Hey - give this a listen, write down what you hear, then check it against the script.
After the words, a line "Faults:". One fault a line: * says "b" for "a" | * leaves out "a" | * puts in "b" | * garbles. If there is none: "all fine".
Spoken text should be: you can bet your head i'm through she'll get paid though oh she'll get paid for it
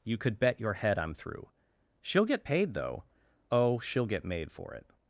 you could bet your head i'm through she'll get paid though oh she'll get made for it
Faults:
* says "could" for "can"
* says "made" for "paid"